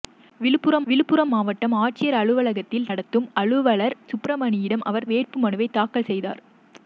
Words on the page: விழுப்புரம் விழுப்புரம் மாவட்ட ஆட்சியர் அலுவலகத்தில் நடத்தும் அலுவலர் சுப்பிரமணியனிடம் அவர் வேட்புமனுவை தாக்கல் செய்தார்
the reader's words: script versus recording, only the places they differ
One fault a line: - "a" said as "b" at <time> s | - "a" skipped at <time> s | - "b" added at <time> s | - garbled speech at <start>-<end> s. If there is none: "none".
none